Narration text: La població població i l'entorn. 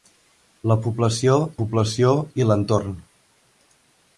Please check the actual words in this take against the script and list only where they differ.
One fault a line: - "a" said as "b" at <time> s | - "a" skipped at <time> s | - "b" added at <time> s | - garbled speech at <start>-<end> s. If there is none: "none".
none